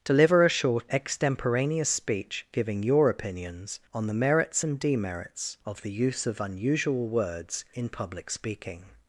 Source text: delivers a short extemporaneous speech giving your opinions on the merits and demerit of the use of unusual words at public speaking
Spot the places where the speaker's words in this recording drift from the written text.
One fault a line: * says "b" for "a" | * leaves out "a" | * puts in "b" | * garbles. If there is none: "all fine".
* says "deliver" for "delivers"
* says "demerits" for "demerit"
* says "in" for "at"